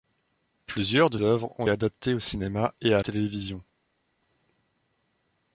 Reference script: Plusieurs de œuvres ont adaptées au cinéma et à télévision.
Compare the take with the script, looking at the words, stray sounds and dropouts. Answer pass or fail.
pass